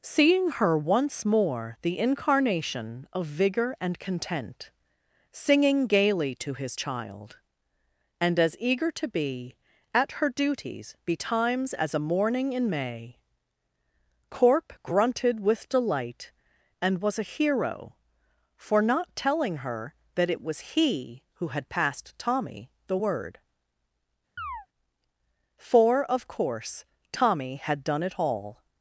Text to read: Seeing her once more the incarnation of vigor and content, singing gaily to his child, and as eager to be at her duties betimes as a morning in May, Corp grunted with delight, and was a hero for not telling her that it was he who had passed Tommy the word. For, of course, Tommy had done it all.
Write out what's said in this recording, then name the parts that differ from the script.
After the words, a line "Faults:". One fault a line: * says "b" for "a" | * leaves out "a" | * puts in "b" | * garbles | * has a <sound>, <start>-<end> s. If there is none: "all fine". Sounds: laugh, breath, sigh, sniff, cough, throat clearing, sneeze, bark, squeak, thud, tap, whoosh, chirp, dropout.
Seeing her once more the incarnation of vigor and content, singing gaily to his child, and as eager to be at her duties betimes as a morning in May, Corp grunted with delight, and was a hero for not telling her that it was he who had passed Tommy the word. For, of course, Tommy had done it all.
Faults:
* has a chirp, 24.4-24.7 s